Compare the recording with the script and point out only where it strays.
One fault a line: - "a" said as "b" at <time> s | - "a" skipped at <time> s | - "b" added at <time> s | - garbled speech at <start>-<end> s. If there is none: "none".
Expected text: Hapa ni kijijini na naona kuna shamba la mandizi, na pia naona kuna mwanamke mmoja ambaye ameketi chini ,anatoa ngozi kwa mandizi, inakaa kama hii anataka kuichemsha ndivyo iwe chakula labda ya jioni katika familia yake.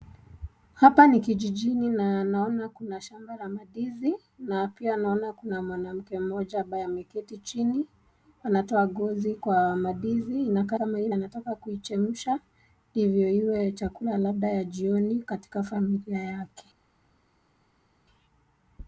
none